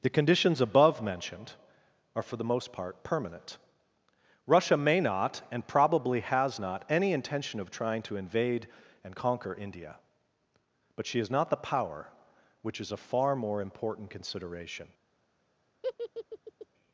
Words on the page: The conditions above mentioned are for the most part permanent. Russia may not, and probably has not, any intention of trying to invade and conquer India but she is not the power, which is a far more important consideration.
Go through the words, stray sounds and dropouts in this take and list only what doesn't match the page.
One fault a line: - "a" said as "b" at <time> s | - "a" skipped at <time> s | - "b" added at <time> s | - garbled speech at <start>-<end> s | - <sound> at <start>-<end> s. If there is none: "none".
- laugh at 15.8-16.7 s